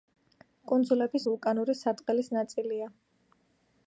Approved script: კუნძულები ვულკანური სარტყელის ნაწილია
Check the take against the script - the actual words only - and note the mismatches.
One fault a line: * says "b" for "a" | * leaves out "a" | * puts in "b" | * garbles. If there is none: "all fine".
all fine